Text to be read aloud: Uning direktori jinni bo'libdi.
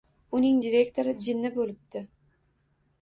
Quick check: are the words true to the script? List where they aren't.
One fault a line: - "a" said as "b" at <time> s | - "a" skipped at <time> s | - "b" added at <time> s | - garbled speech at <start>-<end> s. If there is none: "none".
none